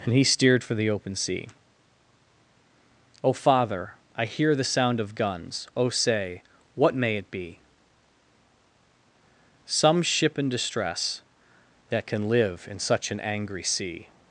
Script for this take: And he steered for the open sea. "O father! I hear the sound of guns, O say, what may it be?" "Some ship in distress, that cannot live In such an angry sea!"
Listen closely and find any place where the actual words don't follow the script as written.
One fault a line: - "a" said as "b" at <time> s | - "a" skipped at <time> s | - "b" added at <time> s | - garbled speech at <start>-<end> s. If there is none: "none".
- "cannot" said as "can" at 12.1 s